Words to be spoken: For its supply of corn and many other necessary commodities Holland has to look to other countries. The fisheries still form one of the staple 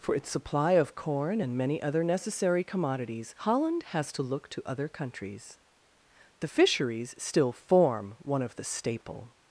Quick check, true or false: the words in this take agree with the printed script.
true